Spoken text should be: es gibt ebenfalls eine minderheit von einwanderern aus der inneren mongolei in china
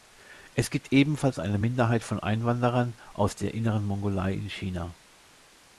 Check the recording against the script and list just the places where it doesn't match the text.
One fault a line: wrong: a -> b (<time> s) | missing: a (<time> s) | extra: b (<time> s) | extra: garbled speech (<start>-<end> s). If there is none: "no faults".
no faults